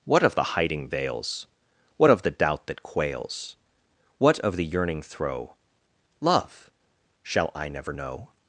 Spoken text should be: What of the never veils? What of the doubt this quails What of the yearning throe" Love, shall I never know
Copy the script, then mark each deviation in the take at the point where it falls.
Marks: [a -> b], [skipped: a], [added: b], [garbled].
What of the [never -> hiding] veils? What of the doubt [this -> that] quails What of the yearning throe" Love, shall I never know